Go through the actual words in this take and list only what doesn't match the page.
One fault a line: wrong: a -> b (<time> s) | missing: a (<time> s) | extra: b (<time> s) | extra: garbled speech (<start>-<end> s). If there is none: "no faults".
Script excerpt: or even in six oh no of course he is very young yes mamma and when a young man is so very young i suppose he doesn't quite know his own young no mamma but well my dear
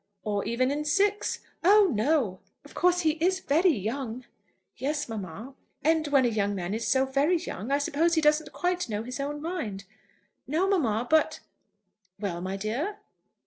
wrong: young -> mind (9.4 s)